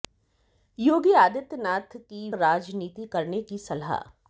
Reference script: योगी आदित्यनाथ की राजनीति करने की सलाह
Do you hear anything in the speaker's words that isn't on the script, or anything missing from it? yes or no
no